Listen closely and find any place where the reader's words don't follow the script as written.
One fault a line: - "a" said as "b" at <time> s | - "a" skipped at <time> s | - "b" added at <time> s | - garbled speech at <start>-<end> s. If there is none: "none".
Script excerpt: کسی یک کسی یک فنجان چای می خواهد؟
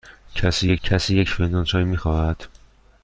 none